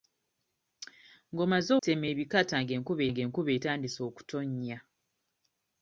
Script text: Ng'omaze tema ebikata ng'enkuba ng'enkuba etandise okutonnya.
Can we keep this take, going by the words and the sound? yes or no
yes